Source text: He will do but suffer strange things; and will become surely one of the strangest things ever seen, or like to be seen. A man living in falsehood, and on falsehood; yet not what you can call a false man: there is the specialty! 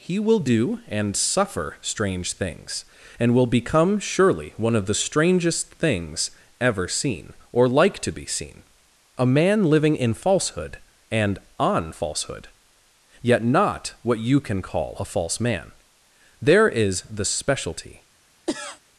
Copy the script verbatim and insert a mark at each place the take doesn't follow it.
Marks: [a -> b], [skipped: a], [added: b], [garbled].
He will do [but -> and] suffer strange things; and will become surely one of the strangest things ever seen, or like to be seen. A man living in falsehood, and on falsehood; yet not what you can call a false man: there is the specialty!